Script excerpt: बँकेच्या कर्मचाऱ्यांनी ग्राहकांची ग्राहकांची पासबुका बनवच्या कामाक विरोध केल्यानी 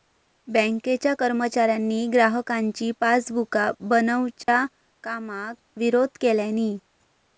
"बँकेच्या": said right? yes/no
yes